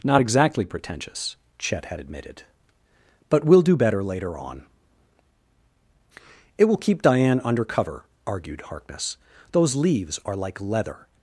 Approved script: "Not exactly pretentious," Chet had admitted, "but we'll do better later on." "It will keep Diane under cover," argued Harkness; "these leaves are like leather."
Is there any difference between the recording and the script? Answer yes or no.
yes